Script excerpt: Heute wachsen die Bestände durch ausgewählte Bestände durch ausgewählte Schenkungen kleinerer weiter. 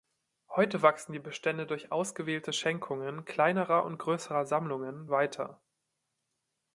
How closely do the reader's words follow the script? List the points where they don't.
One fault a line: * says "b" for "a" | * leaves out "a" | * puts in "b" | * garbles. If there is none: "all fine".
* says "Schenkungen kleinerer und größerer Sammlungen" for "Bestände durch ausgewählte Schenkungen kleinerer"